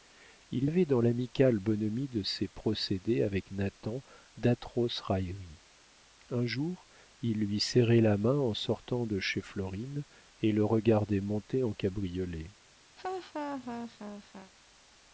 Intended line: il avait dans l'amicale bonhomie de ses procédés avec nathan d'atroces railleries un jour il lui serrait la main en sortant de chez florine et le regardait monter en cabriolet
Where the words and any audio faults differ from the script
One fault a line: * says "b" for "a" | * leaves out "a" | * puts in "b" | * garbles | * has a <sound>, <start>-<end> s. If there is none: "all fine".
* has a laugh, 13.0-14.5 s